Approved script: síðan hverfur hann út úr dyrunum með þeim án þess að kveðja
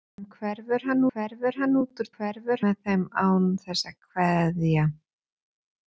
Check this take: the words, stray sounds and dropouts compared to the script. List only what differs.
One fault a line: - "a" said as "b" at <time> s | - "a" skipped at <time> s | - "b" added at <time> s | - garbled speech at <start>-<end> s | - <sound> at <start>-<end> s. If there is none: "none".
- "hverfur hann" added at 1.1 s
- "dyrunum" said as "hverfur" at 2.1 s